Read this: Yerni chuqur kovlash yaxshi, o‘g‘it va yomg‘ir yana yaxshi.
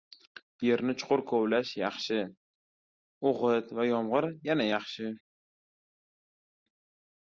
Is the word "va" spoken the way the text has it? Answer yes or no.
yes